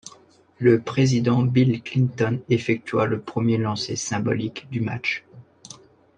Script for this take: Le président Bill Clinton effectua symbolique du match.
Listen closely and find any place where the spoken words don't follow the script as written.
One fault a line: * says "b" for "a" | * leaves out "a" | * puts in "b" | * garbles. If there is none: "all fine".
* puts in "le premier lancer"